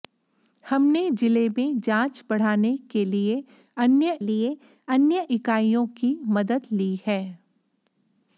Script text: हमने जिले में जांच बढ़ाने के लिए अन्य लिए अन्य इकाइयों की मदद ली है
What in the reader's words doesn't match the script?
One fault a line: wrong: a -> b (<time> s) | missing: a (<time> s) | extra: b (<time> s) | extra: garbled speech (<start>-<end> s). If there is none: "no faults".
no faults